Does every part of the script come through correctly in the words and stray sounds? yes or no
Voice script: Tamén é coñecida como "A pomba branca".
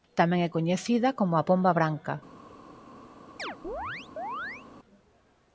no